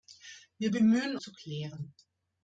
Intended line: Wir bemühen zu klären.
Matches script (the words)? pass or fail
pass